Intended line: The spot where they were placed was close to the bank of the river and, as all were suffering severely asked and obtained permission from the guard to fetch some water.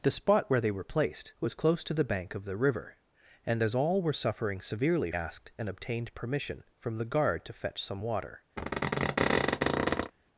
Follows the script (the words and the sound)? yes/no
no